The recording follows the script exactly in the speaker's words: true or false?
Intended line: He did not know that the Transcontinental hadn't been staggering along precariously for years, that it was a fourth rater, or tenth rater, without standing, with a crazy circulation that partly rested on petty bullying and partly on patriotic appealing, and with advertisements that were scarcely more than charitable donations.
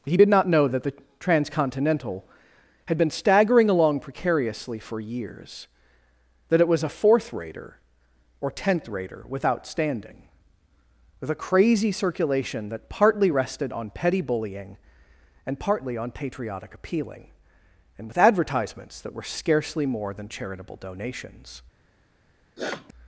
false